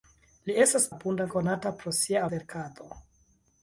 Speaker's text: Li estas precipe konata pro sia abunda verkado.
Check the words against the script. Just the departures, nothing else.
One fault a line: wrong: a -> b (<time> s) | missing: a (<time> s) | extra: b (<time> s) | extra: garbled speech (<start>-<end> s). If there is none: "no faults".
wrong: precipe -> abunda (0.9 s)
missing: abunda (2.2 s)